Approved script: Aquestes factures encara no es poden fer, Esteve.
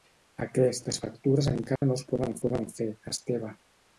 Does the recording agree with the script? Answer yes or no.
no